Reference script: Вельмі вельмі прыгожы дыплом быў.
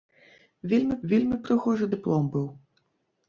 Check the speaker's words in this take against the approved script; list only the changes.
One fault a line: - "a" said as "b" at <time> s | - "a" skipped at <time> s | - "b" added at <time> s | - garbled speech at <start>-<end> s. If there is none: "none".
none